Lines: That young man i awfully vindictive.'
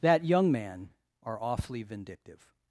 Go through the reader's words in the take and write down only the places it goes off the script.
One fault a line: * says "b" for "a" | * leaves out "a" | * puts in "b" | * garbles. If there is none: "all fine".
* says "are" for "i"